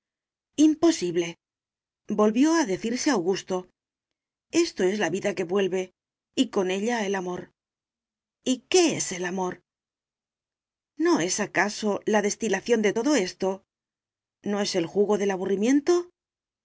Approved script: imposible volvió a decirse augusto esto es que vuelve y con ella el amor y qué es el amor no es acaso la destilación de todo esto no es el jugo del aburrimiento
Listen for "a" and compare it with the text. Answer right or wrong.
right